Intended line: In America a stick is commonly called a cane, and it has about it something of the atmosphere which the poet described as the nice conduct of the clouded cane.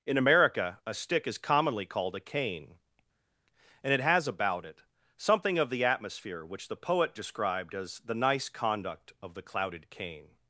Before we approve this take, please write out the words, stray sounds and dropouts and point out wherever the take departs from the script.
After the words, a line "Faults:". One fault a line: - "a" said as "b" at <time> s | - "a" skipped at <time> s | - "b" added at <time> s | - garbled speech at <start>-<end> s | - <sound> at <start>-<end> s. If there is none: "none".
In America a stick is commonly called a cane, and it has about it something of the atmosphere which the poet described as the nice conduct of the clouded cane.
Faults:
none